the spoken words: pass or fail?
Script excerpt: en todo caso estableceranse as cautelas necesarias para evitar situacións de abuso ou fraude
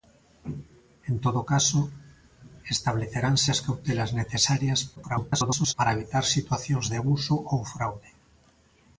fail